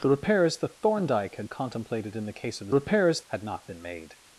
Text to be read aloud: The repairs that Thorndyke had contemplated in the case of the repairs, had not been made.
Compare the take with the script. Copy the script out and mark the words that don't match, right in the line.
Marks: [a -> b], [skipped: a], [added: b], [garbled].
The repairs that Thorndyke had contemplated in the case of the repairs, had not been made.